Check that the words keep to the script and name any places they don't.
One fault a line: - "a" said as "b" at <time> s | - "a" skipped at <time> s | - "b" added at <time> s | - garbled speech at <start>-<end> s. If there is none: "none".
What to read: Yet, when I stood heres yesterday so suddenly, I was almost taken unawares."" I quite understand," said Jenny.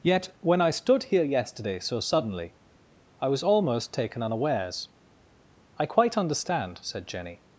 - "heres" said as "here" at 1.0 s